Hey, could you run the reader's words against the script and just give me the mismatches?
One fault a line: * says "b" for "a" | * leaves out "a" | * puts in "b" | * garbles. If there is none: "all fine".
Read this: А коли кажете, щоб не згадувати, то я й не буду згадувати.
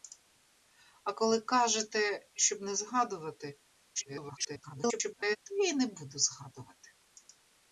* garbles